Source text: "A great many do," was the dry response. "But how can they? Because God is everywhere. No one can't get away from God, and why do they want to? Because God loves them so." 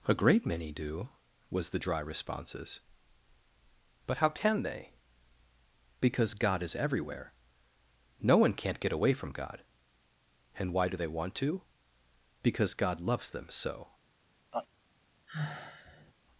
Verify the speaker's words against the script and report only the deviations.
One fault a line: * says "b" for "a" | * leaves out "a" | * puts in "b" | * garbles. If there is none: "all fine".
* says "responses" for "response"